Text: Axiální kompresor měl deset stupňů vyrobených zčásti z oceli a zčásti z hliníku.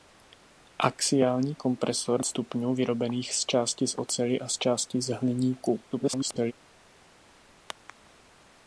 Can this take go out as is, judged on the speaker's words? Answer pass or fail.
fail